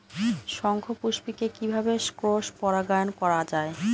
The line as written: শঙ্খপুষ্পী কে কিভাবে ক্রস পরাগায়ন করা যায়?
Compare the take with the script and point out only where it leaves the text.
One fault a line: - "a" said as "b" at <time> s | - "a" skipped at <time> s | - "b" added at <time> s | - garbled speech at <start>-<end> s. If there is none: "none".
none